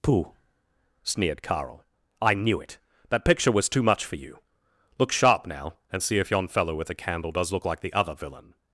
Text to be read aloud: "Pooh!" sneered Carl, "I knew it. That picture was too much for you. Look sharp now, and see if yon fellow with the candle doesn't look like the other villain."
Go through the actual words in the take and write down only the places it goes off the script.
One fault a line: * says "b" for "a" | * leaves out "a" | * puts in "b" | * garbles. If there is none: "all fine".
* says "does" for "doesn't"